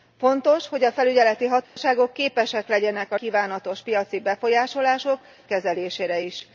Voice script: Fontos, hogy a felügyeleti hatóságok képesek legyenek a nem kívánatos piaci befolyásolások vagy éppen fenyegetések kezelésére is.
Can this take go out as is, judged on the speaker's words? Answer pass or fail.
fail